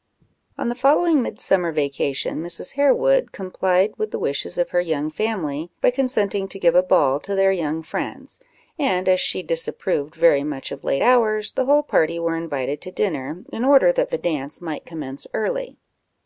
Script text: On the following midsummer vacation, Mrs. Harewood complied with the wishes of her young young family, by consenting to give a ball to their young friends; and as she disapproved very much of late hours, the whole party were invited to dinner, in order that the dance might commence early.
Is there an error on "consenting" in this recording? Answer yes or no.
no